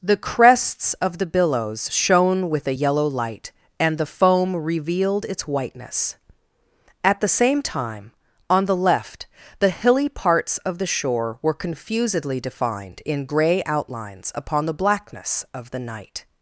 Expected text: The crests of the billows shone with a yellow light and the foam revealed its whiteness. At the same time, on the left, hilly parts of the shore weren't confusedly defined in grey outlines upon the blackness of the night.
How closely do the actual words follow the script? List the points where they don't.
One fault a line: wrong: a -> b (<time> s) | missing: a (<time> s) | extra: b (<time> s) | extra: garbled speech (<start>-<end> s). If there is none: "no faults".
extra: the (9.6 s)
wrong: weren't -> were (11.4 s)